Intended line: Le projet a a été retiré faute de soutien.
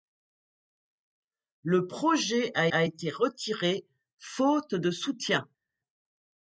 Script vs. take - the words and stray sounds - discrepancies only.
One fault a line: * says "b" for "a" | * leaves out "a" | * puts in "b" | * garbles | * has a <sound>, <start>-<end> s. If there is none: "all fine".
all fine